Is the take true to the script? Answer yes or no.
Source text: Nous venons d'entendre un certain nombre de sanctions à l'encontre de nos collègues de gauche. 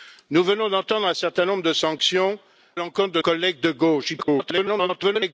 no